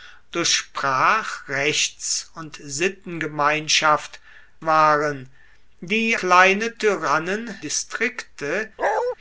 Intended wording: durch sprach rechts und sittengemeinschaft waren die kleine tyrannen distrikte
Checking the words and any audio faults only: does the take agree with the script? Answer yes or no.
no